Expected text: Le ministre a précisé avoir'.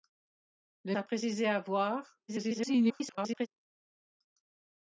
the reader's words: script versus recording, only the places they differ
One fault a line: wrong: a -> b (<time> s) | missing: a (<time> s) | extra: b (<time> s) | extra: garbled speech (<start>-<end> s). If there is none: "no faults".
missing: ministre (0.9 s)
extra: garbled speech (2.3-3.5 s)